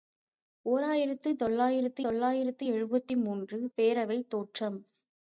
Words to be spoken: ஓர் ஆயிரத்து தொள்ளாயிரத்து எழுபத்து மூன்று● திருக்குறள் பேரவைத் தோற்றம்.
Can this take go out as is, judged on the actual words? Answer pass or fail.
fail